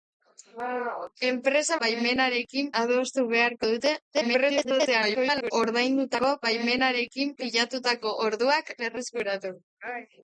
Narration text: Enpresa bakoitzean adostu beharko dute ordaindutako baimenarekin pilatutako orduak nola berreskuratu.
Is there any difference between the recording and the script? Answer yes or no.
yes